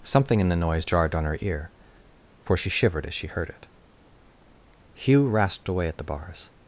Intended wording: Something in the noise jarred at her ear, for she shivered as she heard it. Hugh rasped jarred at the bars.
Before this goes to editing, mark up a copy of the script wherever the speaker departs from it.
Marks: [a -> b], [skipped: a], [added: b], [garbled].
Something in the noise jarred [at -> on] her ear, for she shivered as she heard it. Hugh rasped [jarred -> away] at the bars.